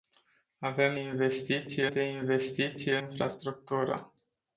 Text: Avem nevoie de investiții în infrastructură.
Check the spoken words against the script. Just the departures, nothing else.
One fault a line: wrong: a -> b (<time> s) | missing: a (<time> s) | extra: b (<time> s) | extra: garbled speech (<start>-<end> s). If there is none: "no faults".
wrong: nevoie -> investiții (0.9 s)
missing: în (2.9 s)